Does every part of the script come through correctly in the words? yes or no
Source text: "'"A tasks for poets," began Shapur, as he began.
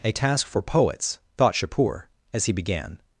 no